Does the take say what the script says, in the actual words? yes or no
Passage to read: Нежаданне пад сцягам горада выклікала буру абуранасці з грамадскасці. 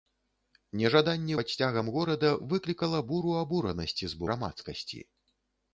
yes